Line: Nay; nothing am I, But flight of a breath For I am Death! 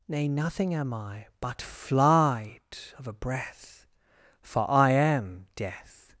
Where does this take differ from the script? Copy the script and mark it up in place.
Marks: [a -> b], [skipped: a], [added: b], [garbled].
Nay; nothing am I, But flight of a breath For I am Death!